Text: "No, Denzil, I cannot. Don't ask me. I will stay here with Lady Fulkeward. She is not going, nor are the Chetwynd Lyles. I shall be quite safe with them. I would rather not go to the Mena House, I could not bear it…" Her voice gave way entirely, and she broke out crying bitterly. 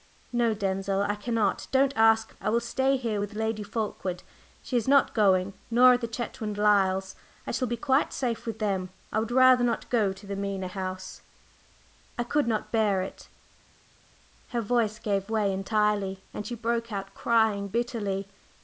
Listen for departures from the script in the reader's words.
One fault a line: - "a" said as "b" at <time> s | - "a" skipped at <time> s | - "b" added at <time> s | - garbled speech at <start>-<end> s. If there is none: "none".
- "me" skipped at 2.4 s